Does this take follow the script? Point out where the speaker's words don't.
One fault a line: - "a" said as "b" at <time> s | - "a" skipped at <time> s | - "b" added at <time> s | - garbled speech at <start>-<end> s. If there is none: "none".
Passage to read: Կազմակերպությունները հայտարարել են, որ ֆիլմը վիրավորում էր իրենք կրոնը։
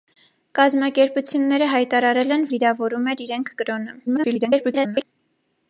- "որ ֆիլմը" skipped at 2.5 s
- garbled speech at 4.1-5.0 s